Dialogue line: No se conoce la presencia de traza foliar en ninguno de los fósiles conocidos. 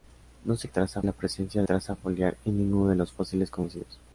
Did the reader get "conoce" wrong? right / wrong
wrong